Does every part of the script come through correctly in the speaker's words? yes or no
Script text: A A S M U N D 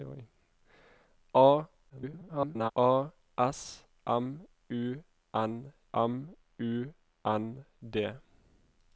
no